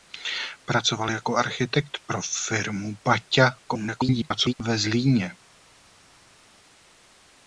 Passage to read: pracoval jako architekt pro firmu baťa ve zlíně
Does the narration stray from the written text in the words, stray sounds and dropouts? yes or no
yes